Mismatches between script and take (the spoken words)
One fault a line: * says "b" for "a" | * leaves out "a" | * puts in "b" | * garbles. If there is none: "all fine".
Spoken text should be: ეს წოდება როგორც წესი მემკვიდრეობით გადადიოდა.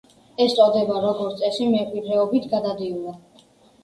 all fine